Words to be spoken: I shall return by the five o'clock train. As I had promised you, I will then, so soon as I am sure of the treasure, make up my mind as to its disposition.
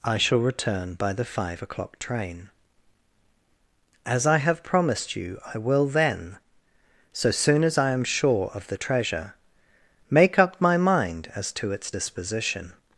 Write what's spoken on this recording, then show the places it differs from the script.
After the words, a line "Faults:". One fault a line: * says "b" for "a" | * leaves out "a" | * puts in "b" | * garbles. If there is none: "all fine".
I shall return by the five o'clock train. As I have promised you, I will then, so soon as I am sure of the treasure, make up my mind as to its disposition.
Faults:
* says "have" for "had"